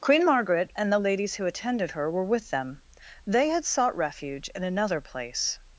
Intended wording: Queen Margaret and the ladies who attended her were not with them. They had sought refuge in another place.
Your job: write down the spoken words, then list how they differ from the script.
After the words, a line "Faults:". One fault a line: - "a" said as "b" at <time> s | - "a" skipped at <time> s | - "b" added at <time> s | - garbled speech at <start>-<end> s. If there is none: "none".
Queen Margaret and the ladies who attended her were with them. They had sought refuge in another place.
Faults:
- "not" skipped at 2.2 s